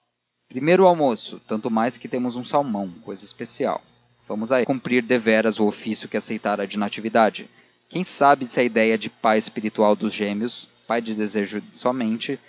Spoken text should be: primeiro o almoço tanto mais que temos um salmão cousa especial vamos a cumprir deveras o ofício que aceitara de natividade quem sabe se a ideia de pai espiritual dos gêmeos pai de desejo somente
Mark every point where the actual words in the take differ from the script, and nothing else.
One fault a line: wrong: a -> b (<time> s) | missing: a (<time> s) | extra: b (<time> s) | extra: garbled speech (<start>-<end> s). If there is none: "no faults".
no faults